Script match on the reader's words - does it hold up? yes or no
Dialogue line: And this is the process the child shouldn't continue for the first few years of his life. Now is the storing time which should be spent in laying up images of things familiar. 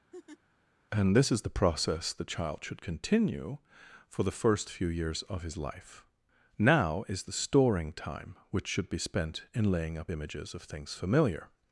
no